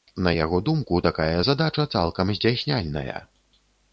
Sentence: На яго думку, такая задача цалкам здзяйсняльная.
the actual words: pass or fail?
pass